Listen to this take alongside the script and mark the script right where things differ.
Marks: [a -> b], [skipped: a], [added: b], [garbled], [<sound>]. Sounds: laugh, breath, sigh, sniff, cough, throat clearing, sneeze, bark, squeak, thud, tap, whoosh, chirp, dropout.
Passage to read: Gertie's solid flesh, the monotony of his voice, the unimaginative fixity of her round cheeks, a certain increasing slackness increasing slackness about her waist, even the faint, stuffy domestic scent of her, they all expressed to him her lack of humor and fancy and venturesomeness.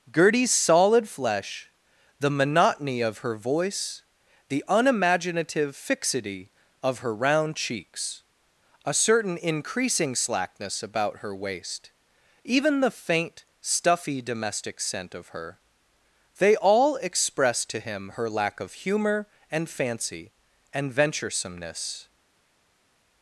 Gertie's solid flesh, the monotony of [his -> her] voice, the unimaginative fixity of her round cheeks, a certain increasing slackness [skipped: increasing slackness] about her waist, even the faint, stuffy domestic scent of her, they all expressed to him her lack of humor and fancy and venturesomeness.